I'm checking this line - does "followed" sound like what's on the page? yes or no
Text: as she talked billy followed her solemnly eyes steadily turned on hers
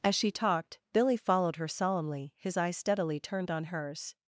yes